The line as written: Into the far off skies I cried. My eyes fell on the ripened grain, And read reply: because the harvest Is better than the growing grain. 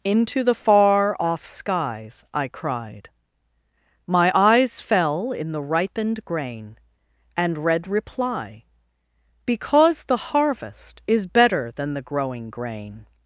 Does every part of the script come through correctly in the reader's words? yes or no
no